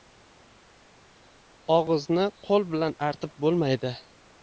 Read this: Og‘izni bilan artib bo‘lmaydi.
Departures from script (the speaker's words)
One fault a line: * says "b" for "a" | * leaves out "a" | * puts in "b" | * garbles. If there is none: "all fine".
* puts in "qo‘l"